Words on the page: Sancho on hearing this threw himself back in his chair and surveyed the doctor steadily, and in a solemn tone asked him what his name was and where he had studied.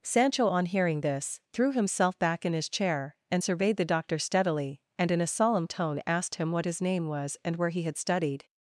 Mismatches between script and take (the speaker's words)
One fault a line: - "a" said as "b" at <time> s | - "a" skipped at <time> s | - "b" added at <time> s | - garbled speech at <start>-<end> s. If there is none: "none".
none